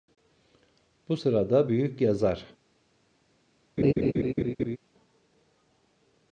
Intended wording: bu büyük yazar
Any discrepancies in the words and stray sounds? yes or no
yes